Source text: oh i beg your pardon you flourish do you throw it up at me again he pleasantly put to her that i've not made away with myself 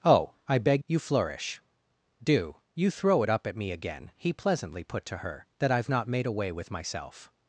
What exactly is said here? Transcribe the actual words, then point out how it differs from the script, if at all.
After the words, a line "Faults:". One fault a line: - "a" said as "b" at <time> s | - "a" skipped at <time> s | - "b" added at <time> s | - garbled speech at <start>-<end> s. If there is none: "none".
oh i beg you flourish do you throw it up at me again he pleasantly put to her that i've not made away with myself
Faults:
- "your pardon" skipped at 0.8 s